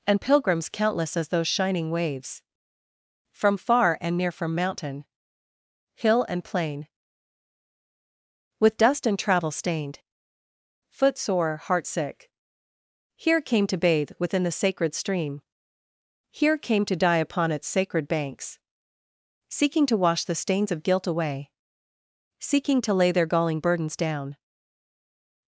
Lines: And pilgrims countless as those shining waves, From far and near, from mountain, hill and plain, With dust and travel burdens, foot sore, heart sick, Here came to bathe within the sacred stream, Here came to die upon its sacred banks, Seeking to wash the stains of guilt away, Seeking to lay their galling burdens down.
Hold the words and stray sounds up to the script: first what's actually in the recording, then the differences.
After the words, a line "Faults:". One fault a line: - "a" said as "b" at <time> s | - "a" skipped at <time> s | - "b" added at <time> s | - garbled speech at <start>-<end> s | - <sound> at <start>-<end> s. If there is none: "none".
And pilgrims countless as those shining waves, From far and near, from mountain, hill and plain, With dust and travel stained, foot sore, heart sick, Here came to bathe within the sacred stream, Here came to die upon its sacred banks, Seeking to wash the stains of guilt away, Seeking to lay their galling burdens down.
Faults:
- "burdens" said as "stained" at 9.5 s